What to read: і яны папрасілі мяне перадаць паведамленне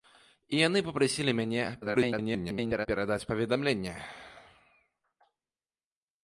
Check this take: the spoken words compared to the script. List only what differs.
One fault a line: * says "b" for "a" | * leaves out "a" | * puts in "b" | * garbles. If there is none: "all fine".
* garbles